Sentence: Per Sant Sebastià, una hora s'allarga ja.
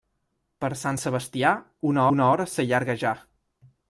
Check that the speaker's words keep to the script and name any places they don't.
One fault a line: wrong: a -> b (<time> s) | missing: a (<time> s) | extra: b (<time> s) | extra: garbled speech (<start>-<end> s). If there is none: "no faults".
extra: una (2.2 s)